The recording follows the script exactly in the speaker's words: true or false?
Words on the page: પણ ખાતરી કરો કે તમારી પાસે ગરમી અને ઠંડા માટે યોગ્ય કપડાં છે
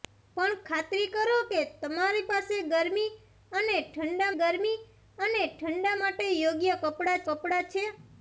false